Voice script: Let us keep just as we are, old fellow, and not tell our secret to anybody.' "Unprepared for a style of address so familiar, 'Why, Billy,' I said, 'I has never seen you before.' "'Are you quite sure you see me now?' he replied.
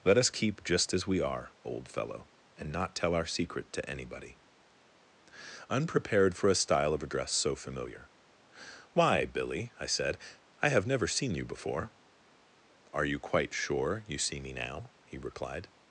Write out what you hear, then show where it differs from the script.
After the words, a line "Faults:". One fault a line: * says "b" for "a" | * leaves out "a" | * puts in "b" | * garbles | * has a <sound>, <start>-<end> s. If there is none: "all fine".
Let us keep just as we are, old fellow, and not tell our secret to anybody.' "Unprepared for a style of address so familiar, 'Why, Billy,' I said, 'I have never seen you before.' "'Are you quite sure you see me now?' he replied.
Faults:
* says "have" for "has"